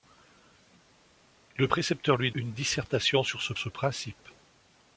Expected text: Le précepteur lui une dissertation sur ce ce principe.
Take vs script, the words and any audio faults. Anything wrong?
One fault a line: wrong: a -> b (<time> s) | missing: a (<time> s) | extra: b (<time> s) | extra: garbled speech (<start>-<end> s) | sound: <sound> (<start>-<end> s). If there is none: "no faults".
no faults